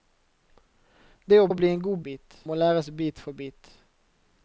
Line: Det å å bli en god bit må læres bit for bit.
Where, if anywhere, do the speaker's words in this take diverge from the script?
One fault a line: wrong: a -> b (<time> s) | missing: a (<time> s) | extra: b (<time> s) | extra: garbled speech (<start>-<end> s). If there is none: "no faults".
no faults